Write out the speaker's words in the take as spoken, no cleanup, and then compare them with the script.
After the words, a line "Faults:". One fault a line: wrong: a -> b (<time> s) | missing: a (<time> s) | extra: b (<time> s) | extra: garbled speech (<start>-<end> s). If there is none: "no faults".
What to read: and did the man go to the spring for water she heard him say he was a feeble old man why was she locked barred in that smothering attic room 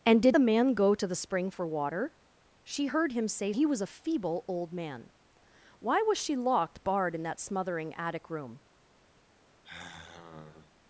and did the man go to the spring for water she heard him say he was a feeble old man why was she locked barred in that smothering attic room
Faults:
no faults